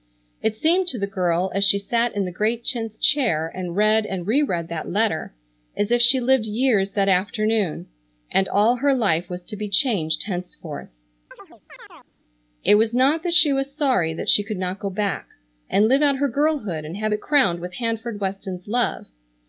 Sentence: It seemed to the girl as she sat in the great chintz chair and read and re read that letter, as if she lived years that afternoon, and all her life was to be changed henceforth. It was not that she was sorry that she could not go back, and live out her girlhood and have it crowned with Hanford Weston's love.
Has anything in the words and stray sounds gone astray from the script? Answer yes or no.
yes